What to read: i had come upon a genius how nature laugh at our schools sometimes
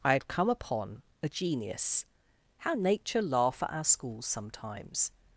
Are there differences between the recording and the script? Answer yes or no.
no